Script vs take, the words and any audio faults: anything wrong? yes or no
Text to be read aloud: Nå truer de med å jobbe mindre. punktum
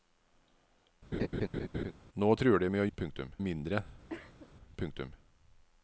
yes